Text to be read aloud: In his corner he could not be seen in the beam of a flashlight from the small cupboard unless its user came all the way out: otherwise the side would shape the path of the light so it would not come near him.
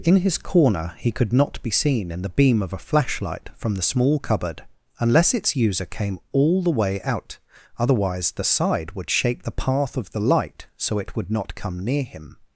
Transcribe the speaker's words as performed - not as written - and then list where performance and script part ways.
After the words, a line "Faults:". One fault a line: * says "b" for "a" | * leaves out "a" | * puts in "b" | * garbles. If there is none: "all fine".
In his corner he could not be seen in the beam of a flashlight from the small cupboard unless its user came all the way out: otherwise the side would shape the path of the light so it would not come near him.
Faults:
all fine